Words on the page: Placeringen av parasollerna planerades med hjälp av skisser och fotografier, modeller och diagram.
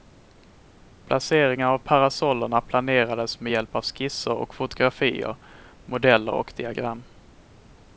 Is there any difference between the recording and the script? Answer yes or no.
no